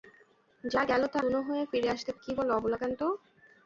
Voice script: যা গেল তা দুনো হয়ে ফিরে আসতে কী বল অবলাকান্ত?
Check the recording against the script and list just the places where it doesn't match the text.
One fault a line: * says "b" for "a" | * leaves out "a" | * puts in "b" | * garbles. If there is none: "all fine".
all fine